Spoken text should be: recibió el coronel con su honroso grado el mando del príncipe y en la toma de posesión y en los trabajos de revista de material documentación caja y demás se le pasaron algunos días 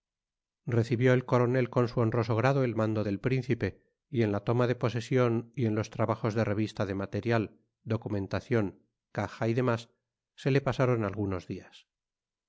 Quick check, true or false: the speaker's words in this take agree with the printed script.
true